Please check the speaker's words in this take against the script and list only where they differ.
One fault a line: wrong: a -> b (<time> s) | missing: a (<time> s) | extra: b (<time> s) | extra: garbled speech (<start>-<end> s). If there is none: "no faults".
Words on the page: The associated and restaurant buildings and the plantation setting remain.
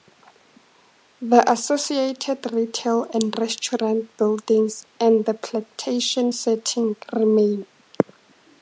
extra: retail (2.5 s)